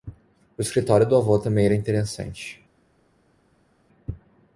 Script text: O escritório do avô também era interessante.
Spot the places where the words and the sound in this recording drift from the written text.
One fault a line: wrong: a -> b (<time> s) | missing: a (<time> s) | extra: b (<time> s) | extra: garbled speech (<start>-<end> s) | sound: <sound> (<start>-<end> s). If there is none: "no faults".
no faults